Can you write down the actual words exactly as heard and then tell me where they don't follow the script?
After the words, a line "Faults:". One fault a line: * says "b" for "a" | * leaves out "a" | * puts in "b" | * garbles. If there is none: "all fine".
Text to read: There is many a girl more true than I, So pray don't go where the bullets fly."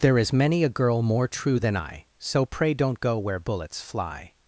There is many a girl more true than I, So pray don't go where bullets fly."
Faults:
* leaves out "the"